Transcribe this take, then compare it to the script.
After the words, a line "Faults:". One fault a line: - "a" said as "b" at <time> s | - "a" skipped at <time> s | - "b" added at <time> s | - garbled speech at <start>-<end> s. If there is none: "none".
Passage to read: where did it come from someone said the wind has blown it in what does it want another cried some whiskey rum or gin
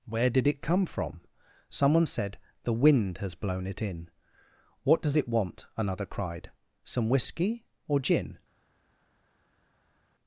where did it come from someone said the wind has blown it in what does it want another cried some whiskey or gin
Faults:
- "rum" skipped at 7.7 s